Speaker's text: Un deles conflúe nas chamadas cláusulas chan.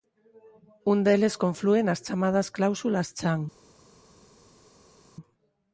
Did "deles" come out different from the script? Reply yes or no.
no